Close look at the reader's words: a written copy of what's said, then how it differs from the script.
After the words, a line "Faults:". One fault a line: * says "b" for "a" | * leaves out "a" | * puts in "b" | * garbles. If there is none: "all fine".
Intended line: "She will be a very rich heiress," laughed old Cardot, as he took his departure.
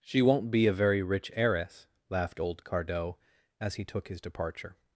"She won't be a very rich heiress," laughed old Cardot, as he took his departure.
Faults:
* says "won't" for "will"